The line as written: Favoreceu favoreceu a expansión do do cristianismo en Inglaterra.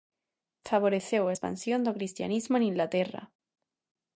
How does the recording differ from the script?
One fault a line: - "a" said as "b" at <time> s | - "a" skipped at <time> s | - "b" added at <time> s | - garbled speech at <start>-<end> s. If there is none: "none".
- "favoreceu" skipped at 1.2 s
- "do" skipped at 1.9 s